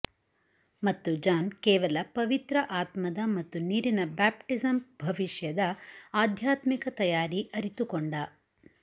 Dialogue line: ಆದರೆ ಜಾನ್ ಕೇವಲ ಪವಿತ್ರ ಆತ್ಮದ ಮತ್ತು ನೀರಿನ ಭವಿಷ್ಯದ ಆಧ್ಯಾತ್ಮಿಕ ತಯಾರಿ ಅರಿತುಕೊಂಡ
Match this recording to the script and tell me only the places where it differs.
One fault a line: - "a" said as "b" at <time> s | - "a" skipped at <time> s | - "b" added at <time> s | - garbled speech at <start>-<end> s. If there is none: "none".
- "ಆದರೆ" said as "ಮತ್ತು" at 0.8 s
- "ಬ್ಯಾಪ್ಟಿಸಮ್" added at 4.2 s